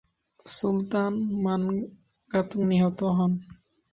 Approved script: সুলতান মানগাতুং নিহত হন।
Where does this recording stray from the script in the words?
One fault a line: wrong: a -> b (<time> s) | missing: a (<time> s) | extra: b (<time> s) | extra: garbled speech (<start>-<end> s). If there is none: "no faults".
no faults